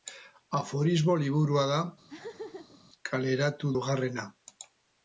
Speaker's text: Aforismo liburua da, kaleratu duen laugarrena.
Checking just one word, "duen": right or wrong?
wrong